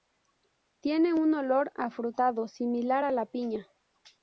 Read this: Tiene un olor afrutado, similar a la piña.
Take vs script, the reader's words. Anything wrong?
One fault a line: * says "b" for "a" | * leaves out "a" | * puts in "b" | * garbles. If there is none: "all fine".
all fine